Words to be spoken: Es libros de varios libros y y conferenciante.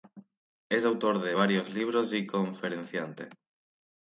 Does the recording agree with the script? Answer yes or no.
no